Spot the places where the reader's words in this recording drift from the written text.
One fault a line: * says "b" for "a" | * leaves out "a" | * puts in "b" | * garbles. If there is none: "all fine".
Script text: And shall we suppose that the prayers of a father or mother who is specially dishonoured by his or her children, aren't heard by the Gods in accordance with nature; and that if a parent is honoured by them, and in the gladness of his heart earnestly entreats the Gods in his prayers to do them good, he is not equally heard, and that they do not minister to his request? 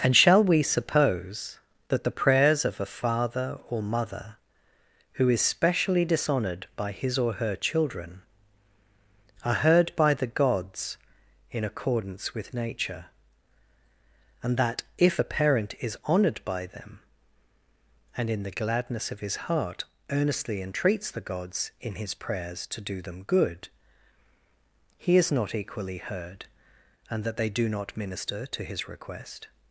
* says "are" for "aren't"